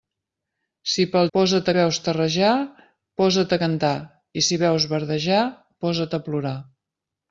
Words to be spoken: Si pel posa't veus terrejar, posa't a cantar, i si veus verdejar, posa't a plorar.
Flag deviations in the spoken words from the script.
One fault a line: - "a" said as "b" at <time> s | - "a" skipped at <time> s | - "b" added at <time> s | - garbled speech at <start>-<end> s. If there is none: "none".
none